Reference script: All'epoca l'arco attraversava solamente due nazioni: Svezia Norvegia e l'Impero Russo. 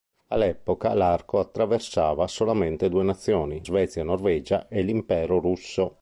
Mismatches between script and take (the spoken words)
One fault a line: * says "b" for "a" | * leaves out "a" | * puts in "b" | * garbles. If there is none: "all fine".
all fine